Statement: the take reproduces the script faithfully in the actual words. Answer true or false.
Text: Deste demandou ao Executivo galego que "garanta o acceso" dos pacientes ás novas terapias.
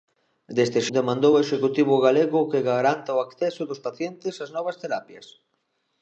true